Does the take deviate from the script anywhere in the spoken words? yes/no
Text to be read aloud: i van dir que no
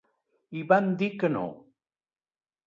no